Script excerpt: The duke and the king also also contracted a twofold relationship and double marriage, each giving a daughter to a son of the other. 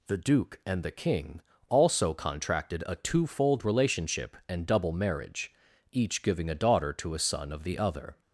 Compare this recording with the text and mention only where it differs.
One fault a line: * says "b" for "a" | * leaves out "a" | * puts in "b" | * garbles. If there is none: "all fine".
* leaves out "also"